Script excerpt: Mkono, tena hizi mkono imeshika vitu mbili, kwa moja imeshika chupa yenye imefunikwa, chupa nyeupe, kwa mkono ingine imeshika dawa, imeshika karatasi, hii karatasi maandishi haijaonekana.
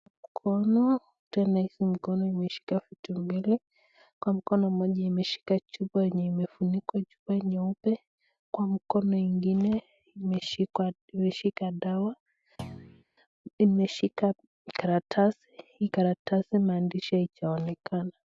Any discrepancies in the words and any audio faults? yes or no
yes